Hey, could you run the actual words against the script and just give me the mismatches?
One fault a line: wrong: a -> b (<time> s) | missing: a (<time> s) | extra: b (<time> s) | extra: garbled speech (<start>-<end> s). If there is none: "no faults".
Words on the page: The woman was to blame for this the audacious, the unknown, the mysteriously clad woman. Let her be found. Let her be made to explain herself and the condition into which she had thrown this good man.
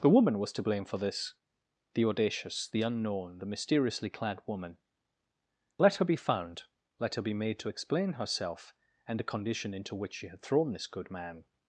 no faults